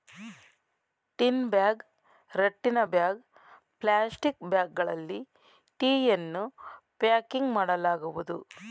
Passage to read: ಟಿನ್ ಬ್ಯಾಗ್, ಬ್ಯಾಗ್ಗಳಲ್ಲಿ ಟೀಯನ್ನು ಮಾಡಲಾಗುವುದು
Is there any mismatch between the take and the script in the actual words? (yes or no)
yes